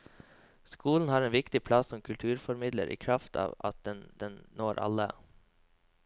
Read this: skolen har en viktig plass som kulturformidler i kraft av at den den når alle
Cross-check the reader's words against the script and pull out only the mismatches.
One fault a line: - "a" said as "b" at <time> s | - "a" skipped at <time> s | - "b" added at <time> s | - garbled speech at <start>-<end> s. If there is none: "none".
none